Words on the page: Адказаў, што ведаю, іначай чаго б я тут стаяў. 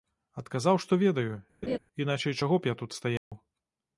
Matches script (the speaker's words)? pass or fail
pass